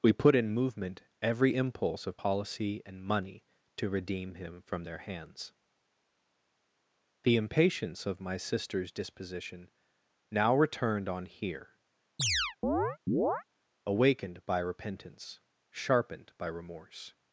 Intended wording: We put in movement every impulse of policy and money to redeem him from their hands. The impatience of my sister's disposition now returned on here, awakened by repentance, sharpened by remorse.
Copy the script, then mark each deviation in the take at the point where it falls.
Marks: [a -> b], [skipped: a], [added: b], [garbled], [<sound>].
We put in movement every impulse of policy and money to redeem him from their hands. The impatience of my sister's disposition now returned on here, [chirp] awakened by repentance, sharpened by remorse.